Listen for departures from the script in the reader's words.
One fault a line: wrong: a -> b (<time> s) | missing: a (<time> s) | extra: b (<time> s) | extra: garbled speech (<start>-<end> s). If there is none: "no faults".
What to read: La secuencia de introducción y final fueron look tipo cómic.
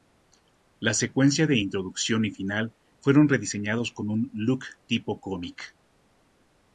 extra: rediseñados con un (3.3 s)